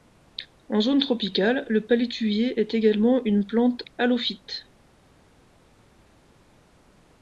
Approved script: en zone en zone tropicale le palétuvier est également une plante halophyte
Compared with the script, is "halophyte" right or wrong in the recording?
right